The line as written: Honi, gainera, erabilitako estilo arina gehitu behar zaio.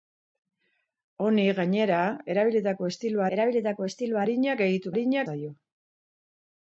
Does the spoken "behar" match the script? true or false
false